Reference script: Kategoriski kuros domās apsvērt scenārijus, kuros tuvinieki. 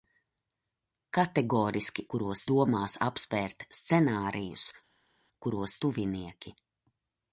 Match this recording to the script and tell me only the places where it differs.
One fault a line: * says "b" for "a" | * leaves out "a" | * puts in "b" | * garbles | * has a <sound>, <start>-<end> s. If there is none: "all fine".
all fine